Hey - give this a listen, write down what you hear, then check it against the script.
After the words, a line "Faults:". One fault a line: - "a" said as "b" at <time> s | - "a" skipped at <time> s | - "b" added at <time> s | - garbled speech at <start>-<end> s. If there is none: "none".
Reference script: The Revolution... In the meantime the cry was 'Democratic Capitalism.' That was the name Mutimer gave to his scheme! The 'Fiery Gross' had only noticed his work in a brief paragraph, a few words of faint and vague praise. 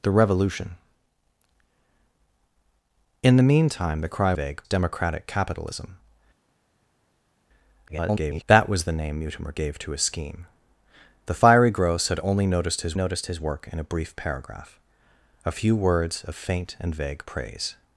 The Revolution... In the meantime the cry vague 'Democratic Capitalism.' [garbled] That was the name Mutimer gave to his scheme! The 'Fiery Gross' had only noticed his noticed his work in a brief paragraph, a few words of faint and vague praise.
Faults:
- "was" said as "vague" at 4.3 s
- garbled speech at 7.9-8.4 s
- "noticed his" added at 12.9 s